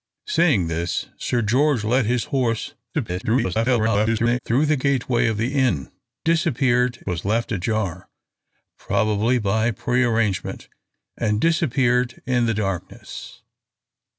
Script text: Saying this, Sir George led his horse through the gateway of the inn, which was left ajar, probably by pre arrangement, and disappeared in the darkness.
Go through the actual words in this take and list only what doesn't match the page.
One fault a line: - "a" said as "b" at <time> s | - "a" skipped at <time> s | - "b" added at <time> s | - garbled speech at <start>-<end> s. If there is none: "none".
- garbled speech at 2.9-4.4 s
- "which" said as "disappeared" at 6.2 s